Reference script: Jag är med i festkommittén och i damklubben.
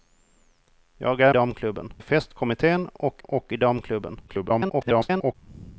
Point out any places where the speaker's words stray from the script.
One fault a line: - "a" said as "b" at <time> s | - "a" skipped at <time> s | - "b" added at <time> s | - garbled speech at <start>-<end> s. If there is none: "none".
- "med" said as "damklubben" at 1.3 s
- "och" added at 3.2 s
- garbled speech at 4.3-5.4 s